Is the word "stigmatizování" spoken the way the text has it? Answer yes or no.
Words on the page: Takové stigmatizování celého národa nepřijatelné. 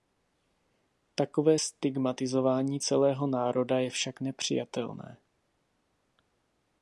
yes